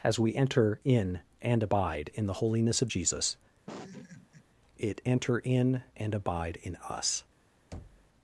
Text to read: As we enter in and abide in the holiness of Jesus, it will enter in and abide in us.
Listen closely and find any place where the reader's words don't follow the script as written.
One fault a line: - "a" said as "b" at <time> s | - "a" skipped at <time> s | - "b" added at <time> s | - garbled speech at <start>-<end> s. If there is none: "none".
- "will" skipped at 5.0 s